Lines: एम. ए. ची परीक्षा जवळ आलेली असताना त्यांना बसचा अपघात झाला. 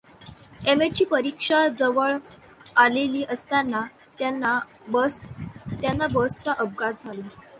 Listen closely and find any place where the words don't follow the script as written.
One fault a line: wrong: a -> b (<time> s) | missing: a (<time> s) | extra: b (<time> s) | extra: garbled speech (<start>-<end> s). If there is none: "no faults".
no faults